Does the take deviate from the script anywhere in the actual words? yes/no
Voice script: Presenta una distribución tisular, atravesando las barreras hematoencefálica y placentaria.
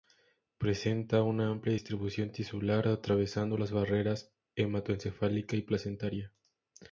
yes